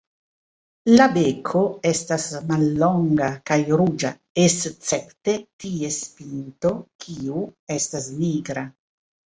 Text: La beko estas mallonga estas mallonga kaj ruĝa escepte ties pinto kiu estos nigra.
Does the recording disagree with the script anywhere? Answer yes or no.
yes